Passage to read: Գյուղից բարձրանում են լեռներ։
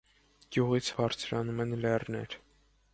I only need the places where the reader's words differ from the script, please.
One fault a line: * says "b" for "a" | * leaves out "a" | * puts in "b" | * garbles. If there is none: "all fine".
all fine